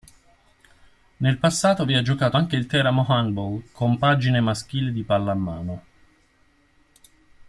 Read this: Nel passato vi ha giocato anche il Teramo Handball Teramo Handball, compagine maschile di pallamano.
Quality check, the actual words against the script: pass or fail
fail